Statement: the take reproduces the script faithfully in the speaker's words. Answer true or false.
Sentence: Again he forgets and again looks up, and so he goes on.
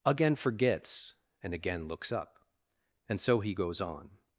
false